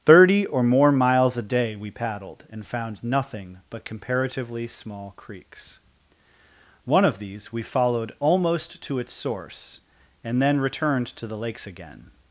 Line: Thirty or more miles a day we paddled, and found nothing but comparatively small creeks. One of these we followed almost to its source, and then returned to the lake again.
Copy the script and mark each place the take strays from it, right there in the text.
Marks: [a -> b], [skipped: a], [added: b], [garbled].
Thirty or more miles a day we paddled, and found nothing but comparatively small creeks. One of these we followed almost to its source, and then returned to the [lake -> lakes] again.